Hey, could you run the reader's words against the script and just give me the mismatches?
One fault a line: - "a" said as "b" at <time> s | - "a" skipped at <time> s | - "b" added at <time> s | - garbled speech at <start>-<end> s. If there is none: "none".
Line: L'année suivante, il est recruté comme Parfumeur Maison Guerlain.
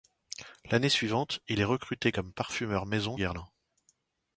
none